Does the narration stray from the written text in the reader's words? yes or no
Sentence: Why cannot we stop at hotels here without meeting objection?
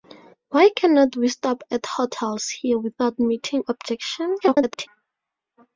yes